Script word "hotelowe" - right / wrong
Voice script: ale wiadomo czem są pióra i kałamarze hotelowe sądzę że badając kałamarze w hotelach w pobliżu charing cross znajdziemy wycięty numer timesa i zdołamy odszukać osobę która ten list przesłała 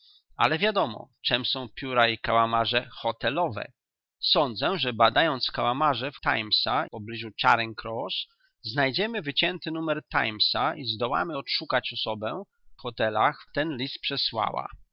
right